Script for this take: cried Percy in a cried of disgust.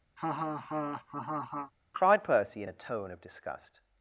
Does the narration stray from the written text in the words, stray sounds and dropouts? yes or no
yes